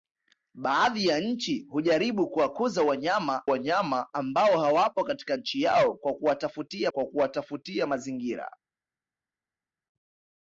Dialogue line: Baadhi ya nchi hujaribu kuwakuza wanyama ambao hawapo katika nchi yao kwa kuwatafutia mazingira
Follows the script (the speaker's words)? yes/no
no